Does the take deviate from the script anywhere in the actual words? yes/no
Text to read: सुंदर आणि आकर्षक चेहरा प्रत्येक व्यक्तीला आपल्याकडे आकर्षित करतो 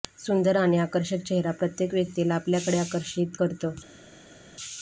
no